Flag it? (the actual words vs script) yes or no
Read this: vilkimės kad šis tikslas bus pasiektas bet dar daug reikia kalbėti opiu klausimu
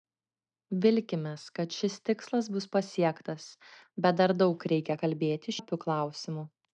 no